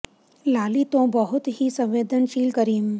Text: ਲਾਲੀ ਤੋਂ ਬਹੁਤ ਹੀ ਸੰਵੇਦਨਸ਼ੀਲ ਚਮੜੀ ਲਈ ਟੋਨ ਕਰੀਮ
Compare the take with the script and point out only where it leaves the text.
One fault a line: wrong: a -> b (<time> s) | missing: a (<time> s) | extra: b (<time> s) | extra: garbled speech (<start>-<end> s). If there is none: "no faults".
missing: ਚਮੜੀ ਲਈ ਟੋਨ (2.5 s)